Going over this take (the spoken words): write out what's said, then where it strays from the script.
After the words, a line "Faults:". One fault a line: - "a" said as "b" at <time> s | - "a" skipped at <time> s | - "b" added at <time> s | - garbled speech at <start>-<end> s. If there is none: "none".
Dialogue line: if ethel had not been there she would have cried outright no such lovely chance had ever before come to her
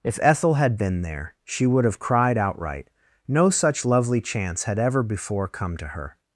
if ethel had been there she would have cried outright no such lovely chance had ever before come to her
Faults:
- "not" skipped at 0.8 s